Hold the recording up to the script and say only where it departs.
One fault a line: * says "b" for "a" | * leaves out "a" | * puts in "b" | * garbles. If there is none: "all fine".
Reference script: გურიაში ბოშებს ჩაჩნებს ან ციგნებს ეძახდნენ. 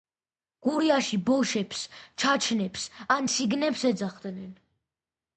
all fine